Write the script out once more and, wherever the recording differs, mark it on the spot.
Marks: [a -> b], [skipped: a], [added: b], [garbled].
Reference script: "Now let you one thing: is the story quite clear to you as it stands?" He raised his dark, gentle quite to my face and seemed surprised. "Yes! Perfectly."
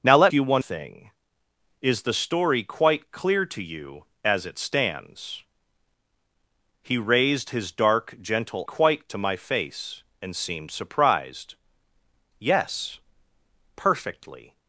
"Now let you one thing: is the story quite clear to you as it stands?" He raised his dark, gentle quite to my face and seemed surprised. "Yes! Perfectly."